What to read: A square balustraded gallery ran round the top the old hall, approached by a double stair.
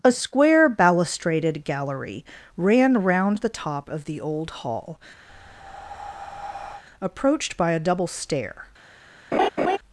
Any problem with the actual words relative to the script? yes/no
yes